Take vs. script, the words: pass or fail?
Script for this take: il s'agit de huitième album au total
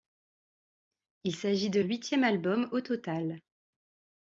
pass